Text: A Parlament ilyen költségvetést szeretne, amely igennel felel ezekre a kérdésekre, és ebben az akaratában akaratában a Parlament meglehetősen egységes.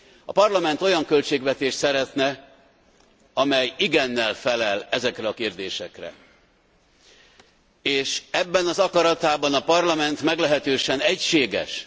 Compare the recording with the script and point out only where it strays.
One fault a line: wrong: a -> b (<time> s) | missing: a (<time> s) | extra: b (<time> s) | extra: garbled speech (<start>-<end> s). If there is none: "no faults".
wrong: ilyen -> olyan (0.8 s)
missing: akaratában (9.5 s)